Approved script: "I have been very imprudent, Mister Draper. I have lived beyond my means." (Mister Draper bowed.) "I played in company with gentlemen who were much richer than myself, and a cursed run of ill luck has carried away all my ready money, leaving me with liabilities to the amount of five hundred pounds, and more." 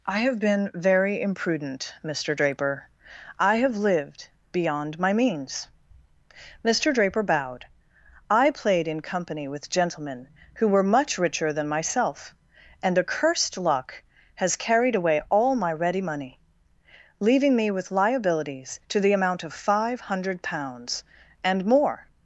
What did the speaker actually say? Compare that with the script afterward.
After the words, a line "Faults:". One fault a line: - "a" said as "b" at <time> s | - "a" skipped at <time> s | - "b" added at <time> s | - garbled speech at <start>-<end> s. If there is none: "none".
"I have been very imprudent, Mister Draper. I have lived beyond my means." (Mister Draper bowed.) "I played in company with gentlemen who were much richer than myself, and a cursed luck has carried away all my ready money, leaving me with liabilities to the amount of five hundred pounds, and more."
Faults:
- "run of ill" skipped at 13.6 s